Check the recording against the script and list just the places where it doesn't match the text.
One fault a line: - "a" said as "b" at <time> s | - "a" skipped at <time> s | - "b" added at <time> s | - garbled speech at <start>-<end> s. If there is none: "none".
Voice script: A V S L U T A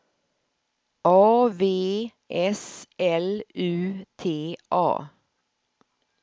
none